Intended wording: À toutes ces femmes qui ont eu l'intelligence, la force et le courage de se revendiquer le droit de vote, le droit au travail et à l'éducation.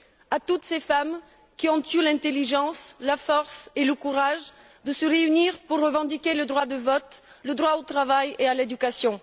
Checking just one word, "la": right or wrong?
right